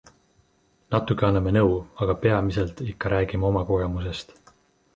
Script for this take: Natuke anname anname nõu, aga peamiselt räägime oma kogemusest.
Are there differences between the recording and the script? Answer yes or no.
yes